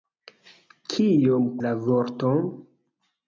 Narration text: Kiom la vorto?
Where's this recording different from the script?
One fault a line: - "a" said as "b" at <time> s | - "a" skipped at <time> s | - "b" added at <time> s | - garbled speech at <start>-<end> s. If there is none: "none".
none